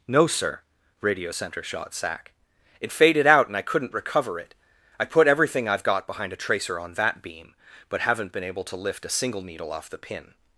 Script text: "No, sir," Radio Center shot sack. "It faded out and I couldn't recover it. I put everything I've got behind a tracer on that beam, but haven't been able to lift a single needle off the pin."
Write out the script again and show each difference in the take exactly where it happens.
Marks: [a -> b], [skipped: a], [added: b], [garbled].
"No, sir," Radio Center shot sack. "It faded out and I couldn't recover it. I put everything I've got behind a tracer on that beam, but haven't been able to lift a single needle off the pin."